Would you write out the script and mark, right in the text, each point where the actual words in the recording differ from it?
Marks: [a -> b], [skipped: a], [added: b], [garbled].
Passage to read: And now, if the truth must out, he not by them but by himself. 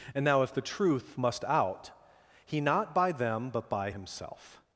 And now, if the truth must out, he not by them but by himself.